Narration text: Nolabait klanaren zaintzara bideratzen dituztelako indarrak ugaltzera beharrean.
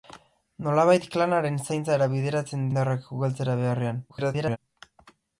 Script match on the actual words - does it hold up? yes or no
no